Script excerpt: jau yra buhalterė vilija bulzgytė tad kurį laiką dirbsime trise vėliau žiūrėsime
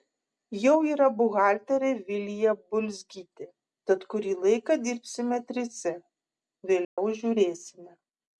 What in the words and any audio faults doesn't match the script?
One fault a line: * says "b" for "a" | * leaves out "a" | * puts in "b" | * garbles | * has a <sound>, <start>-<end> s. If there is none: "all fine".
* has a dropout, 6.8-7.0 s